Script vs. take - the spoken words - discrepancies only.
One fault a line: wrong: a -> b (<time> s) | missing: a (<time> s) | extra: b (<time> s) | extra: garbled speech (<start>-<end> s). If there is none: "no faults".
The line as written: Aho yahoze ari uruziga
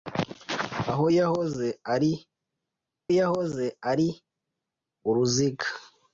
extra: yahoze ari (3.2 s)